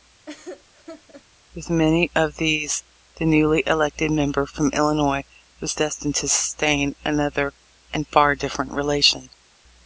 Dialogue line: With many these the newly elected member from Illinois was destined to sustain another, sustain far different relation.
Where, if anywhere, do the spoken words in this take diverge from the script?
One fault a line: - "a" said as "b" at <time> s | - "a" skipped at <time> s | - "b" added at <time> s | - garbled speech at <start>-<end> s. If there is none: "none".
- "of" added at 2.1 s
- "sustain" said as "and" at 7.9 s